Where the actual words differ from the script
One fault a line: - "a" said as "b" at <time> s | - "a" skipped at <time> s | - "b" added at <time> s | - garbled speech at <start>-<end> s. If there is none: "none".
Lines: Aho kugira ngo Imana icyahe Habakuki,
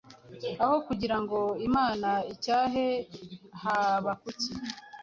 none